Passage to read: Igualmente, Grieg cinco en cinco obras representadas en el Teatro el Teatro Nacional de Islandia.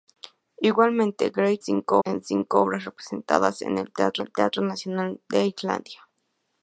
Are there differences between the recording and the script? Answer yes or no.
no